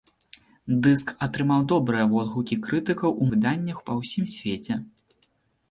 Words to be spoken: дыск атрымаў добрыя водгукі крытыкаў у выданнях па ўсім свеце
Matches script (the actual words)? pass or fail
pass